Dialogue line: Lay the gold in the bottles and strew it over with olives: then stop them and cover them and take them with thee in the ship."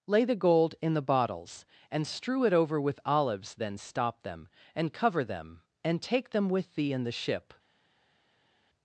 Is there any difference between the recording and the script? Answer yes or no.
no